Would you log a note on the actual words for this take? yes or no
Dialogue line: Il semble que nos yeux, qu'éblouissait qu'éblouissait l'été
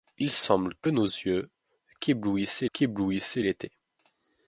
no